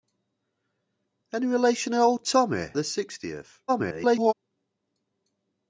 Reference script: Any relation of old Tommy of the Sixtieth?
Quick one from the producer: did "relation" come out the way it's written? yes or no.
yes